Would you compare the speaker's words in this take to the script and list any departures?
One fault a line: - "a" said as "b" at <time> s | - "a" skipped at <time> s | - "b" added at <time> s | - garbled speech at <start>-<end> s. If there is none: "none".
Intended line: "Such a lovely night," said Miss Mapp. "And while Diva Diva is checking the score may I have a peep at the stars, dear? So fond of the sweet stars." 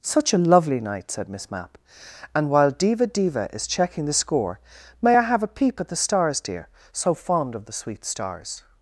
none